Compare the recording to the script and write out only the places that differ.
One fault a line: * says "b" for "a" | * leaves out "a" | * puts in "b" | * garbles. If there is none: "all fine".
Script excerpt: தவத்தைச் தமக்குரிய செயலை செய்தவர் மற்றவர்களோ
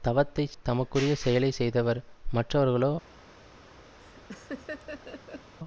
all fine